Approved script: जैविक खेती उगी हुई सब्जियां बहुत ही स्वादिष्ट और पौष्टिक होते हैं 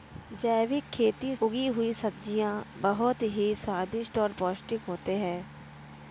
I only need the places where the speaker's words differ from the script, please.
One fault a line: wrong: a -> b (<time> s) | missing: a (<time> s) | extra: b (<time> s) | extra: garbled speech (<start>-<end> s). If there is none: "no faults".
no faults